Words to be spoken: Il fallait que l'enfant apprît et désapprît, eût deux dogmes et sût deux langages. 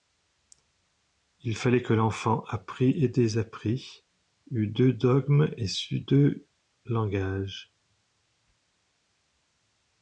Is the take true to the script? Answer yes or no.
yes